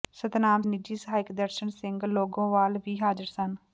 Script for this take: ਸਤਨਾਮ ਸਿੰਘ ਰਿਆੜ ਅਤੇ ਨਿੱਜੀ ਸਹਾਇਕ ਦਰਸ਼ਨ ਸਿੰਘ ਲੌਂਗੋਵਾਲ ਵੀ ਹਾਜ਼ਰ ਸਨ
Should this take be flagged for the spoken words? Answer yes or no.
yes